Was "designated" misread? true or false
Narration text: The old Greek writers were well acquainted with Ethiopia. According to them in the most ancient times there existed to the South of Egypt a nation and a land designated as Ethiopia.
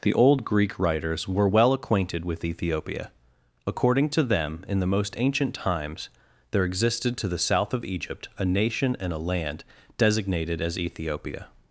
false